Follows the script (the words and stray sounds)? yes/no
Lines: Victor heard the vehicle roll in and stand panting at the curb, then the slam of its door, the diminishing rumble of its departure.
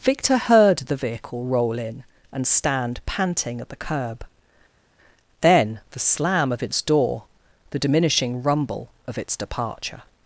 yes